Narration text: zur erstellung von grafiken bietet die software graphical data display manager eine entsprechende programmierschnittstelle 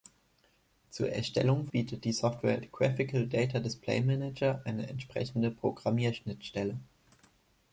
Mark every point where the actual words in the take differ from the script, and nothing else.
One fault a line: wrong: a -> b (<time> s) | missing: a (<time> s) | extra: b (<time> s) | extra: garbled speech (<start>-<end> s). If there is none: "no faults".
missing: von grafiken (1.7 s)